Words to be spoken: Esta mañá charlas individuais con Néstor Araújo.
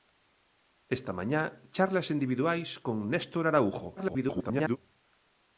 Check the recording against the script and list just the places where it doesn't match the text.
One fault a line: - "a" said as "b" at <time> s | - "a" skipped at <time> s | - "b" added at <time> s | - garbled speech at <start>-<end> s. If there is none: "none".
- garbled speech at 4.0-4.8 s